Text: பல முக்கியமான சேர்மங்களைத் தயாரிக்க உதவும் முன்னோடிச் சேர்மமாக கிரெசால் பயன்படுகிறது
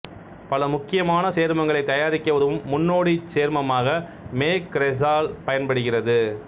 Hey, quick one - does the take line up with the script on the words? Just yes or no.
no